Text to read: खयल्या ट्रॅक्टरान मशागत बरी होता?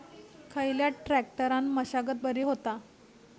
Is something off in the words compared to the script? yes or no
no